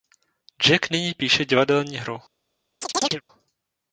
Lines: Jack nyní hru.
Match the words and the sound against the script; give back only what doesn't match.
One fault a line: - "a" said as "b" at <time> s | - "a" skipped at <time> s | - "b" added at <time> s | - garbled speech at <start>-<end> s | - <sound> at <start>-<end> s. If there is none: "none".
- "píše divadelní" added at 1.1 s
- chirp at 2.8-3.2 s